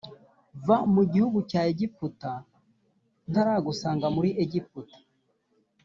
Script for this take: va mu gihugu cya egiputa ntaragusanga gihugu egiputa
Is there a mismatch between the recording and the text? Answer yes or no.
yes